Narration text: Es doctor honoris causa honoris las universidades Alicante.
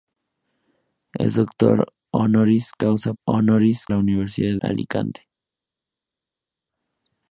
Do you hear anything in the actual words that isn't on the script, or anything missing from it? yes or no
no